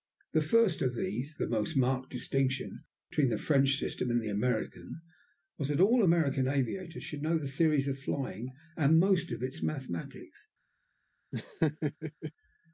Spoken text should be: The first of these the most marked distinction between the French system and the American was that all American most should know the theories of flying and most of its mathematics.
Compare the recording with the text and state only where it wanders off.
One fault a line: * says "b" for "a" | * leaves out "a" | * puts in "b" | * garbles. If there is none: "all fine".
* says "aviators" for "most"